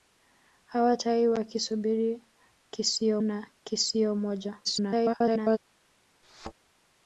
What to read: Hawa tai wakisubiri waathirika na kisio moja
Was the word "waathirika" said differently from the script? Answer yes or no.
yes